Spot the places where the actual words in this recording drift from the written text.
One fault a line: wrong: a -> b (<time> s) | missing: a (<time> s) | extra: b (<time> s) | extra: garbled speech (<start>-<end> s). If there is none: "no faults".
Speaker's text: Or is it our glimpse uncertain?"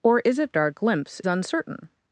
no faults